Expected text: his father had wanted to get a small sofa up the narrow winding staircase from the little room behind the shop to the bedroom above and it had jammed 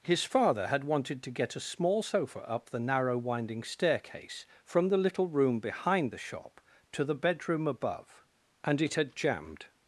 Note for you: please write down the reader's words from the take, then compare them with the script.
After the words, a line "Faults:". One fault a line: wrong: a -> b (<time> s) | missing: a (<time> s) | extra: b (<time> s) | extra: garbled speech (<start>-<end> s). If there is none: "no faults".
his father had wanted to get a small sofa up the narrow winding staircase from the little room behind the shop to the bedroom above and it had jammed
Faults:
no faults